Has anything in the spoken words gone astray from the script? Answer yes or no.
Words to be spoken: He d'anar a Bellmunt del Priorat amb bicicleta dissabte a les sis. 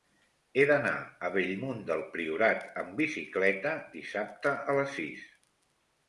no